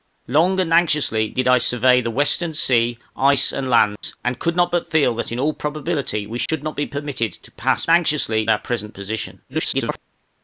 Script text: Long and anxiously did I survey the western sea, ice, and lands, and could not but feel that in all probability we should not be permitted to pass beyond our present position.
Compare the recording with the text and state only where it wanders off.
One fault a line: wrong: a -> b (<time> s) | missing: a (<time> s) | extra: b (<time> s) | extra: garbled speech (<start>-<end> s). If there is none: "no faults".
wrong: beyond -> anxiously (7.9 s)
extra: garbled speech (9.5-10.0 s)